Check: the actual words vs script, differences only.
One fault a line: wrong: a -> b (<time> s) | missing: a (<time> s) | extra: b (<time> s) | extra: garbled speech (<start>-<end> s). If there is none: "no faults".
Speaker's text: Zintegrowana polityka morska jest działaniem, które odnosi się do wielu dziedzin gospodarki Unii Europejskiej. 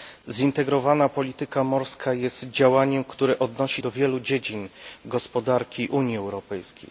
missing: się (3.8 s)